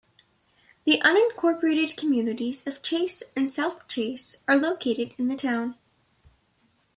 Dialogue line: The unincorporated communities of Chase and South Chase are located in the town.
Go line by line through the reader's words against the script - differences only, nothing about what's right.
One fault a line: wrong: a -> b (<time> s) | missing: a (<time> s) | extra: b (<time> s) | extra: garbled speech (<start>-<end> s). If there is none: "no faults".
no faults